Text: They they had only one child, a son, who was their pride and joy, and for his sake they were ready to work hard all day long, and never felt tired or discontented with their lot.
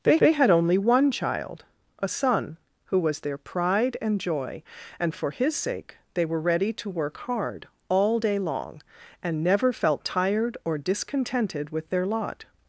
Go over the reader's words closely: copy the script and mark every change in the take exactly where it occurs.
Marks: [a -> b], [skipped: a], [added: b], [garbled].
They they had only one child, a son, who was their pride and joy, and for his sake they were ready to work hard all day long, and never felt tired or discontented with their lot.